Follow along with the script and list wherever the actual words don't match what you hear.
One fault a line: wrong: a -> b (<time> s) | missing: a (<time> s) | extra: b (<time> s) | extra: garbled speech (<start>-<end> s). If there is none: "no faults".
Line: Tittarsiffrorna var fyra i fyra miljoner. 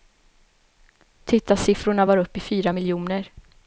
wrong: fyra -> upp (2.2 s)